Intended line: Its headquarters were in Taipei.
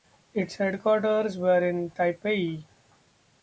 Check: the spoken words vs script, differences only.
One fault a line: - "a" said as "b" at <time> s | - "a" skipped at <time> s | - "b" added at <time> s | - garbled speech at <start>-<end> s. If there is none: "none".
none